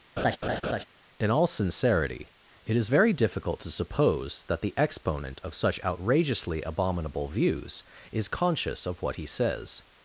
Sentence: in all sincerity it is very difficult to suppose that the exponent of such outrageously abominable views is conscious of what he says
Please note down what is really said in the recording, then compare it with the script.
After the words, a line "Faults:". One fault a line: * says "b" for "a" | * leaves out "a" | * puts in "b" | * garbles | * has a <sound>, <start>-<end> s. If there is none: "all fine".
in all sincerity it is very difficult to suppose that the exponent of such outrageously abominable views is conscious of what he says
Faults:
* has a laugh, 0.2-0.8 s